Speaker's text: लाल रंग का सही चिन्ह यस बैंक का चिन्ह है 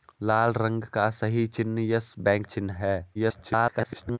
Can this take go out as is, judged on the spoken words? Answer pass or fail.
fail